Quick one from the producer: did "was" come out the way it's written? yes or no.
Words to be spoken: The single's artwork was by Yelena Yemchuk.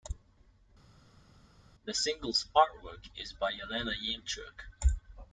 no